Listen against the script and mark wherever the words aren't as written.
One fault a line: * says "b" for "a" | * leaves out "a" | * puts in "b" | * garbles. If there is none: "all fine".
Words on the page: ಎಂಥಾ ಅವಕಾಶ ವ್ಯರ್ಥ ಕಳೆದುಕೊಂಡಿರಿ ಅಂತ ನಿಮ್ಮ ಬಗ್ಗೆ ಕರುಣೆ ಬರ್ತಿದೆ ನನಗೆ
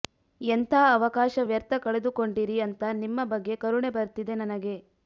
all fine